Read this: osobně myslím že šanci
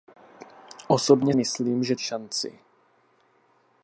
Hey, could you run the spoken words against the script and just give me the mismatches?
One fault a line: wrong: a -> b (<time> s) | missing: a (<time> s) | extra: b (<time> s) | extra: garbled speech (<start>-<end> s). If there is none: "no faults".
no faults